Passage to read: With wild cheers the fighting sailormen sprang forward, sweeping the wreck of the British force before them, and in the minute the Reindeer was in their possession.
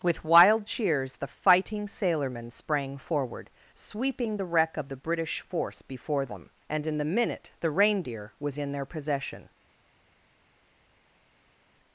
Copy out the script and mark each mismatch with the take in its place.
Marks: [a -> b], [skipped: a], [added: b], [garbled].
With wild cheers the fighting sailormen sprang forward, sweeping the wreck of the British force before them, and in the minute the Reindeer was in their possession.